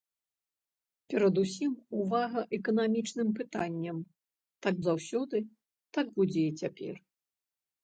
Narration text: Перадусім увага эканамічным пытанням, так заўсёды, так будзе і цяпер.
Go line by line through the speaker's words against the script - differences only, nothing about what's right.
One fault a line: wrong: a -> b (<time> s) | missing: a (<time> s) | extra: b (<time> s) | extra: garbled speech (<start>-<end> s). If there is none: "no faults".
no faults